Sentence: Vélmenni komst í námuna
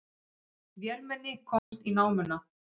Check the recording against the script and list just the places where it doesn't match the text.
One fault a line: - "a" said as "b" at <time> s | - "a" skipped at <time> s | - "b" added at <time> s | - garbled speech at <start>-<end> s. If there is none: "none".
none